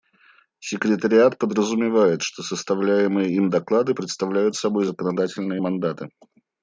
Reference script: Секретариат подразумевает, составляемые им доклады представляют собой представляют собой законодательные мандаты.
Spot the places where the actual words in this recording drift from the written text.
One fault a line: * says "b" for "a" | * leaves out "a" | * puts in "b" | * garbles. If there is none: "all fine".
* puts in "что"
* leaves out "представляют собой"